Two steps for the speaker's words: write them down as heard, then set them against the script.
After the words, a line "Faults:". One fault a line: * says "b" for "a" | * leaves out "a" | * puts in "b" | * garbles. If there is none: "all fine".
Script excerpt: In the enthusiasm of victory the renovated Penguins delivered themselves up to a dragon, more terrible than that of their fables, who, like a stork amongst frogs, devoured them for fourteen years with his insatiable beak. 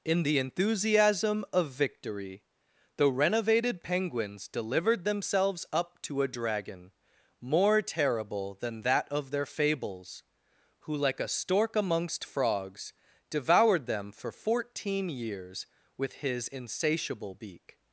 In the enthusiasm of victory the renovated Penguins delivered themselves up to a dragon, more terrible than that of their fables, who, like a stork amongst frogs, devoured them for fourteen years with his insatiable beak.
Faults:
all fine